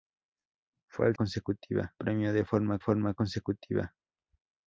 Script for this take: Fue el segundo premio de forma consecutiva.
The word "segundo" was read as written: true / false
false